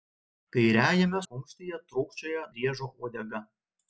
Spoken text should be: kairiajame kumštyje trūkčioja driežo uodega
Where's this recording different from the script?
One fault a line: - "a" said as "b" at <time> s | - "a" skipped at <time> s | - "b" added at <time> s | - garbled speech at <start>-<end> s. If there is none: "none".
none